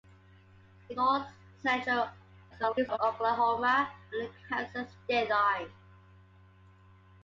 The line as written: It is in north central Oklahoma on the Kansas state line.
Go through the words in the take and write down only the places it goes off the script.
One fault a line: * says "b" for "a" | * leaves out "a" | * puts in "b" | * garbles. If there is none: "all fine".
* leaves out "is in"
* garbles